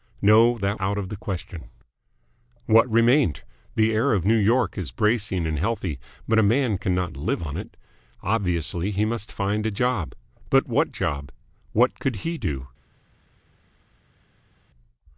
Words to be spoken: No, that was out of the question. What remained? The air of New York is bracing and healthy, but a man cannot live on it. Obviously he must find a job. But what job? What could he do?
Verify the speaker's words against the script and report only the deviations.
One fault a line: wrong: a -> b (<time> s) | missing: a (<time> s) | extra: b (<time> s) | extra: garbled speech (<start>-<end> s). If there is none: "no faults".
missing: was (0.8 s)